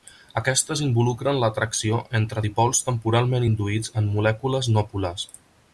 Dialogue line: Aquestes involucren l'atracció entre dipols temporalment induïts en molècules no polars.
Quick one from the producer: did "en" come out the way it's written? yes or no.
yes